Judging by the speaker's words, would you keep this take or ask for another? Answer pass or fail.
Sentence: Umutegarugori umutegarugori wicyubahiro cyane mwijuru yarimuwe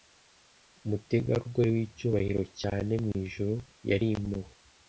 fail